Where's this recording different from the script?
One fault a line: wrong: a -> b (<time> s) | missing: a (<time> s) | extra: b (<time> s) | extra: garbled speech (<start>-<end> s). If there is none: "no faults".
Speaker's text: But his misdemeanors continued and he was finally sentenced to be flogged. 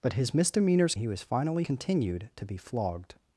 missing: continued and (0.9 s)
wrong: sentenced -> continued (1.6 s)